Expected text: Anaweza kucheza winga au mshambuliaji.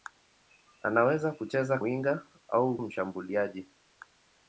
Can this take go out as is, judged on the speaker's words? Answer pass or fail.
pass